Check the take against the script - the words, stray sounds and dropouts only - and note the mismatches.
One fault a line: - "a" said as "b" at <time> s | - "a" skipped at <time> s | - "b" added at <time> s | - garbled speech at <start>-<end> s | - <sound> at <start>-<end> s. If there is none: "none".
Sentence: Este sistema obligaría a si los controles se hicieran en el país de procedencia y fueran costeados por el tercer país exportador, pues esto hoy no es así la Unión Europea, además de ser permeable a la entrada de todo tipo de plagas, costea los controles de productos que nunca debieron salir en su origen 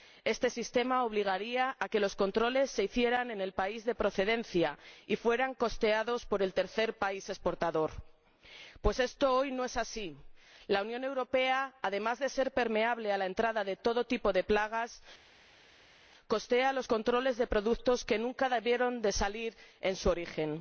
- "si" said as "que" at 1.9 s